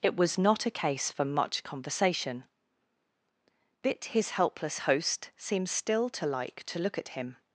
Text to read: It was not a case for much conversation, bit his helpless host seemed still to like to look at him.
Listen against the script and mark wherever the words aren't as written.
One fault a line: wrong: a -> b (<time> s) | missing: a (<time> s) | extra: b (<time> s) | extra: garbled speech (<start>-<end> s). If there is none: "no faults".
no faults